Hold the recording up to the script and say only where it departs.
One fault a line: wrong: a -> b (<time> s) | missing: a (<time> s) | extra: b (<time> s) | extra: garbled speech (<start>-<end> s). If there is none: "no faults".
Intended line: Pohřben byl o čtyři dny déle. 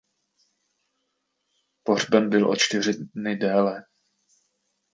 no faults